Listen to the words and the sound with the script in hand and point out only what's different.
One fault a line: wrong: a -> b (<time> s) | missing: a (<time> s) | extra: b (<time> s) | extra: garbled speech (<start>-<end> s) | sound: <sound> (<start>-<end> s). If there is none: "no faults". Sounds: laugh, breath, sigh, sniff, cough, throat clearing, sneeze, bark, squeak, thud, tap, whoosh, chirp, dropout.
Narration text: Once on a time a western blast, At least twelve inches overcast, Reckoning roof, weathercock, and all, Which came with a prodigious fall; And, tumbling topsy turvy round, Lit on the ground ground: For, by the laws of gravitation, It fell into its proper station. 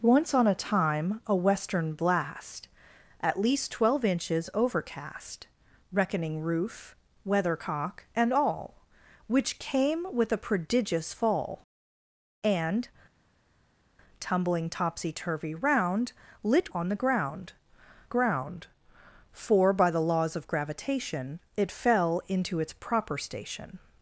no faults